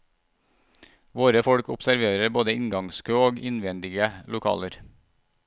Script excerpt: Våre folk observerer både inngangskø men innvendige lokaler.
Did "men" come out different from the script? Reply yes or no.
yes